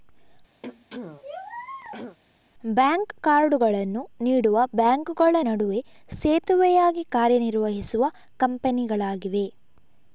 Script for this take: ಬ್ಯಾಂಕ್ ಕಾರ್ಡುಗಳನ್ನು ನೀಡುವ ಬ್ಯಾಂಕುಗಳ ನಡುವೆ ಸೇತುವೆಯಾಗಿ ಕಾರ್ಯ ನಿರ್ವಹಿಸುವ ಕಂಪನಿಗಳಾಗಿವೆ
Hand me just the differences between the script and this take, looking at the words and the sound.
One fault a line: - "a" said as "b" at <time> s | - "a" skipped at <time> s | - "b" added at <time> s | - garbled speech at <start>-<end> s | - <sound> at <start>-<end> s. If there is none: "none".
- throat clearing at 0.6-2.2 s